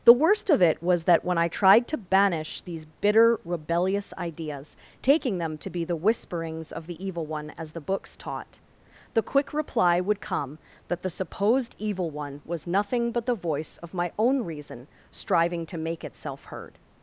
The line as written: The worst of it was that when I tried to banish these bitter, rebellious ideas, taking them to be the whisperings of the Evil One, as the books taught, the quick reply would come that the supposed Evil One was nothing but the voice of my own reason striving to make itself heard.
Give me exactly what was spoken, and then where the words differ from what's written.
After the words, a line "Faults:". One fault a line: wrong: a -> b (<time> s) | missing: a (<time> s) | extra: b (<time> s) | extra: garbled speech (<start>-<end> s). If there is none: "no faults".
The worst of it was that when I tried to banish these bitter, rebellious ideas, taking them to be the whisperings of the Evil One, as the books taught, the quick reply would come that the supposed Evil One was nothing but the voice of my own reason striving to make itself heard.
Faults:
no faults